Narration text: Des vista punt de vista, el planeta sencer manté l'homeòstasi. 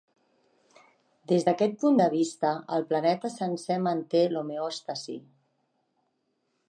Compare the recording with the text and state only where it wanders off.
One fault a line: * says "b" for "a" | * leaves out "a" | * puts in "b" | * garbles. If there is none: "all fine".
* says "d'aquest" for "vista"